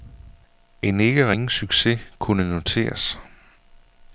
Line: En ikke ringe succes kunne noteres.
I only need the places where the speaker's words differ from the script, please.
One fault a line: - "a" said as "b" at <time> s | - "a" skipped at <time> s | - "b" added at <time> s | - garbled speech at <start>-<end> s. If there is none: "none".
none